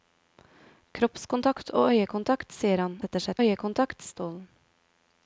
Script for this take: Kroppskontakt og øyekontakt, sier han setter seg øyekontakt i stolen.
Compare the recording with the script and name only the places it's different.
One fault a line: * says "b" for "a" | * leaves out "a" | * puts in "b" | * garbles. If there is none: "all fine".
all fine